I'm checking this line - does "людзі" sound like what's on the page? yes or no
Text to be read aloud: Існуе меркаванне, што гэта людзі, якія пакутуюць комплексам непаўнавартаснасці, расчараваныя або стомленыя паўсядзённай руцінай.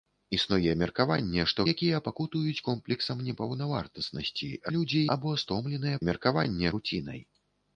no